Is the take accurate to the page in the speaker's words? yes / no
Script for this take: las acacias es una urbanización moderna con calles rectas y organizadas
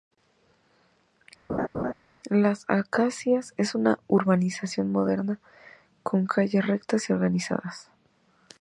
yes